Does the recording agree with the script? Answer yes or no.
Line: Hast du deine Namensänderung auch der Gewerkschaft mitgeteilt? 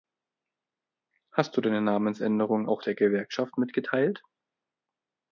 yes